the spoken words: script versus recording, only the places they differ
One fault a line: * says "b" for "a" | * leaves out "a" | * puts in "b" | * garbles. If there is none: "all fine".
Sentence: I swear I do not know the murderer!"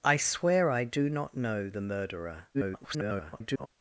* garbles